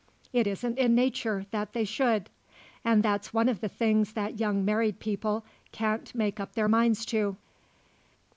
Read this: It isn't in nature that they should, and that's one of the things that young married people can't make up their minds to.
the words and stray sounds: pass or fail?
pass